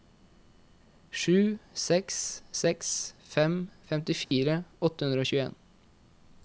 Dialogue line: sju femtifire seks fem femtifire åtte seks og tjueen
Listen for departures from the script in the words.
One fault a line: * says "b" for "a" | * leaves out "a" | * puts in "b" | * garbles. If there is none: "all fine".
* says "seks" for "femtifire"
* says "hundre" for "seks"